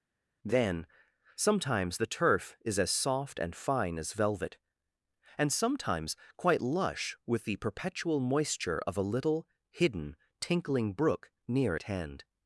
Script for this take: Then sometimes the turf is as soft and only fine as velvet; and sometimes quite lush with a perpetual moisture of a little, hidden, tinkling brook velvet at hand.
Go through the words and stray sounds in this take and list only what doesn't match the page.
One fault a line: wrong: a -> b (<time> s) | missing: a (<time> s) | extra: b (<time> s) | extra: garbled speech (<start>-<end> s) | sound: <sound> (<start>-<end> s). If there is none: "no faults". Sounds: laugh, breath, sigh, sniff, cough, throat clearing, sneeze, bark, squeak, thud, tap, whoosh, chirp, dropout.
missing: only (3.6 s)
wrong: a -> the (7.4 s)
wrong: velvet -> near (11.5 s)